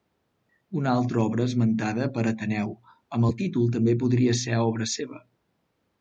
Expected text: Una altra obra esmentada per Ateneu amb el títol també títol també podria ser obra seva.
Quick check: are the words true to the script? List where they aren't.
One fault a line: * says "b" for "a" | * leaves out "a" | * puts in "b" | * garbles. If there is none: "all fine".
* leaves out "títol també"